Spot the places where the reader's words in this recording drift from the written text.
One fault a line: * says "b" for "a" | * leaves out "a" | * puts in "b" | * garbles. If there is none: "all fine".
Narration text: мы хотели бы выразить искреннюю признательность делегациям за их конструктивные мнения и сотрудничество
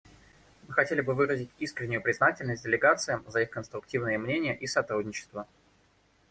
all fine